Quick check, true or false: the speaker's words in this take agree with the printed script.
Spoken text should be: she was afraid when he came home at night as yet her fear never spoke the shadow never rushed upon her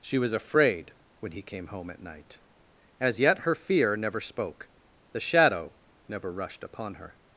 true